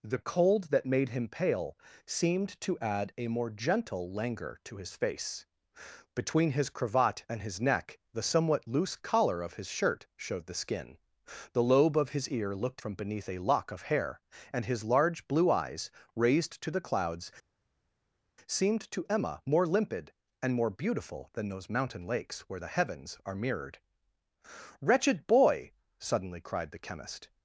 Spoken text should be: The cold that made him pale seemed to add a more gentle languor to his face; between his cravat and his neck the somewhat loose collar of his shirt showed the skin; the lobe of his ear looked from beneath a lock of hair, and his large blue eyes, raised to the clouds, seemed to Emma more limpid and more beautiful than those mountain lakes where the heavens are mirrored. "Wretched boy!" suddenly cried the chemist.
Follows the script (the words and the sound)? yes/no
yes